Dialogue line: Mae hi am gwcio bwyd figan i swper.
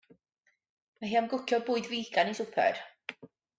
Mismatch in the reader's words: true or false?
false